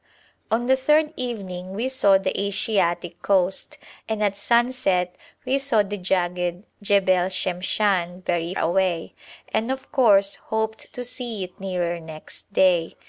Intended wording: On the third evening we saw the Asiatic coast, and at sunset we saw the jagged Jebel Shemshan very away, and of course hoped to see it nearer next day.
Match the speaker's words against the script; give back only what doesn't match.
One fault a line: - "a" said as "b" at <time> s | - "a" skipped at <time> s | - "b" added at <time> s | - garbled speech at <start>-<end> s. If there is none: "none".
none